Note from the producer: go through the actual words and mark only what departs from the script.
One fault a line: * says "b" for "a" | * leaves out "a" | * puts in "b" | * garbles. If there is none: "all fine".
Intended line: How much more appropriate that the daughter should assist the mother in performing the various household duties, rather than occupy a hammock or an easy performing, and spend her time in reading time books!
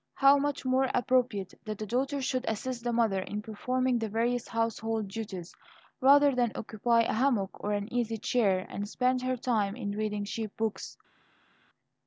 * says "chair" for "performing"
* says "cheap" for "time"